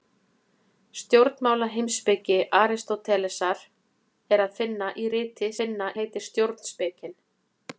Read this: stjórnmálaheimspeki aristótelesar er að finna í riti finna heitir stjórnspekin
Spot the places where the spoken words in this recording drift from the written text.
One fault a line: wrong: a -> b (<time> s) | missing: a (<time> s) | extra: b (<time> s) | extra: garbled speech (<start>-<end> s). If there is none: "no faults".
no faults